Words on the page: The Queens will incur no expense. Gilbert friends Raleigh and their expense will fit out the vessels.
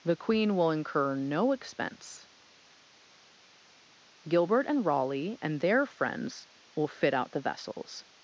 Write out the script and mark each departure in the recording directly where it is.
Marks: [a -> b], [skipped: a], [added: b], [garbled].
The [Queens -> Queen] will incur no expense. Gilbert [friends -> and] Raleigh and their [expense -> friends] will fit out the vessels.